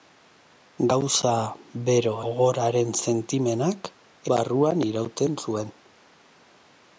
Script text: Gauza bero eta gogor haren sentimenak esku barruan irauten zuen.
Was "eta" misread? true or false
true